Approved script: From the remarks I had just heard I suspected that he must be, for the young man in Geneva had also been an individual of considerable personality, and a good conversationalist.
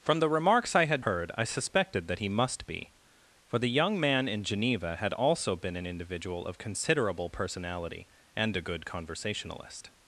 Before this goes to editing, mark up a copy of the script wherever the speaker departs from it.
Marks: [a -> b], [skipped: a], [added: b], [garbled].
From the remarks I had [skipped: just] heard I suspected that he must be, for the young man in Geneva had also been an individual of considerable personality, and a good conversationalist.